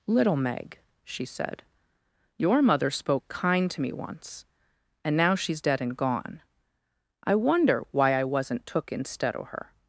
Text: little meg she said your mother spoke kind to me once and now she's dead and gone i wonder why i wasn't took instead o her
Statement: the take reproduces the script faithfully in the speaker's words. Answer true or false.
true